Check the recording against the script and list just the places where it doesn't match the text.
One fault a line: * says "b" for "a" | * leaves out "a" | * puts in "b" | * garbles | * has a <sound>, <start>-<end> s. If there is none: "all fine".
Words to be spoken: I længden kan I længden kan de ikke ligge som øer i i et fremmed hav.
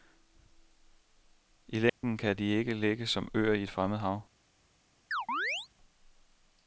* has a dropout, 1.9-2.0 s
* leaves out "I længden kan"
* leaves out "i"
* has a chirp, 5.1-5.7 s